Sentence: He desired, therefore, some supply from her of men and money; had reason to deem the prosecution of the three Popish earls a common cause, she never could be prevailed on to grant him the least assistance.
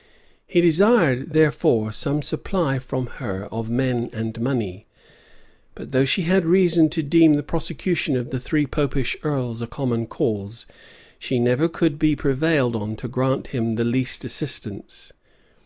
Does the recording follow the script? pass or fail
fail